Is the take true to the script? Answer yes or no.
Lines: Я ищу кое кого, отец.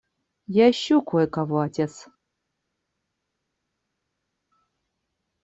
yes